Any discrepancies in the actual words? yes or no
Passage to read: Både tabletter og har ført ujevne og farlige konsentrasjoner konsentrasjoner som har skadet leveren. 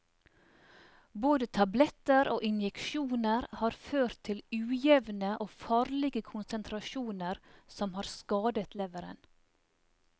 yes